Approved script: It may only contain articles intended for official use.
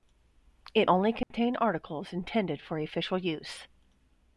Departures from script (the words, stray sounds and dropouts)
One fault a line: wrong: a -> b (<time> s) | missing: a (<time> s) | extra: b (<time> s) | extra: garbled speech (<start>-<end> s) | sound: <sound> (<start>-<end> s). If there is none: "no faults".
missing: may (0.9 s)
sound: dropout (1.2-1.3 s)